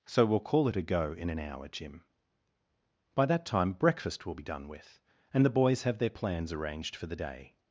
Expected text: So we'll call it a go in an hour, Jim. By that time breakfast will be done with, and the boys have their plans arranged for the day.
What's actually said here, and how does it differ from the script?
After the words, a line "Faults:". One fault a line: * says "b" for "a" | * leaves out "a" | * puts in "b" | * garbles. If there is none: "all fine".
So we'll call it a go in an hour, Jim. By that time breakfast will be done with, and the boys have their plans arranged for the day.
Faults:
all fine